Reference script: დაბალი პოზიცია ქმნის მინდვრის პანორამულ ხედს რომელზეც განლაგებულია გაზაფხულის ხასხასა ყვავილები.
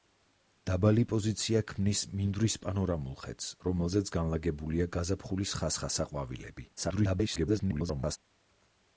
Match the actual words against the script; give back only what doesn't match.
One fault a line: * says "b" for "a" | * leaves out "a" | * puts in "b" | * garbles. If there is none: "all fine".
* garbles